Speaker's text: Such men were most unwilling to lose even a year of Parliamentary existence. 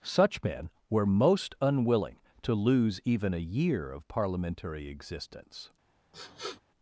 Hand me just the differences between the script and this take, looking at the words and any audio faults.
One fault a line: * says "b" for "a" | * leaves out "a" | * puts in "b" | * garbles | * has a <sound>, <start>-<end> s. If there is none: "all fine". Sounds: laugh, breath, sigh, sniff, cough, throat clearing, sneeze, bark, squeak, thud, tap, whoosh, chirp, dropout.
* has a sniff, 6.1-6.6 s